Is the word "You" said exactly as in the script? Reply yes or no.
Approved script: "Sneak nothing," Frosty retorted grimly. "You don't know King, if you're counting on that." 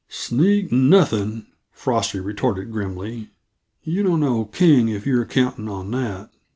yes